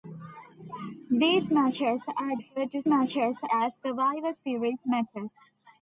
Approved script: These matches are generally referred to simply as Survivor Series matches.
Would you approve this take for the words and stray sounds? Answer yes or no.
no